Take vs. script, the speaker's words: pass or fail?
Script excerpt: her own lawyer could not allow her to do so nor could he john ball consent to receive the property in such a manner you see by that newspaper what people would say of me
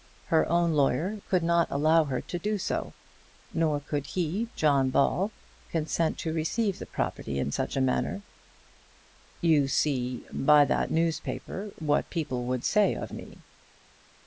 pass